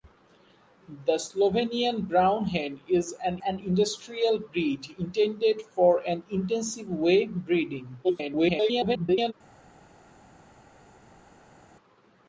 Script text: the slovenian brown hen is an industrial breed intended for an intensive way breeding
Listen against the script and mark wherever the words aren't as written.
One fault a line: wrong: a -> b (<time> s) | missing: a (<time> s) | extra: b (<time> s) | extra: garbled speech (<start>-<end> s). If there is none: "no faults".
extra: an (3.4 s)
extra: garbled speech (8.0-9.3 s)